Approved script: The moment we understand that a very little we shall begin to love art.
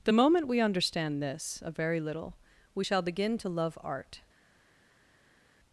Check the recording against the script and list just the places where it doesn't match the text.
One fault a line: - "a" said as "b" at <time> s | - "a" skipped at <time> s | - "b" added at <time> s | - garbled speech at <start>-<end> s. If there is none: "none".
- "that" said as "this" at 1.2 s